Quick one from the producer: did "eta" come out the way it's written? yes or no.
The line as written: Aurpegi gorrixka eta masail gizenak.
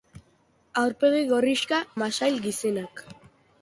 no